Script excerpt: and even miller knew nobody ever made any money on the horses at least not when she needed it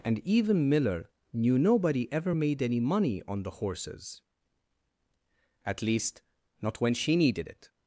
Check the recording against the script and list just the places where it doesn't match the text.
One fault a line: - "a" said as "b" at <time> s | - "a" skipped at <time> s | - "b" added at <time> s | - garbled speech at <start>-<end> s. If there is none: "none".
none